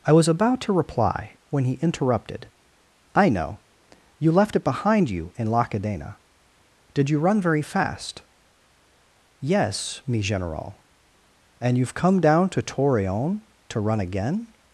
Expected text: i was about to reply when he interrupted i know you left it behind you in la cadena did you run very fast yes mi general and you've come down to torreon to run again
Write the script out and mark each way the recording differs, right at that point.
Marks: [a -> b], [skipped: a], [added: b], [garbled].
i was about to reply when he interrupted i know you left it behind you in la cadena did you run very fast yes mi general and you've come down to torreon to run again